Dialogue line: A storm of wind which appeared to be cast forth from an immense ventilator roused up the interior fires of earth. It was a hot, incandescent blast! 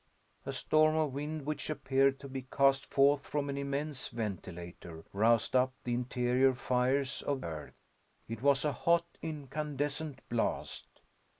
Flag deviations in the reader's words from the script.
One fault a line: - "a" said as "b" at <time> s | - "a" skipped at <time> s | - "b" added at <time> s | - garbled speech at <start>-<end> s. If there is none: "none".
none